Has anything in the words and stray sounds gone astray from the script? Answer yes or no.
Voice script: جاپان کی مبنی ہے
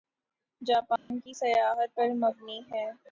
yes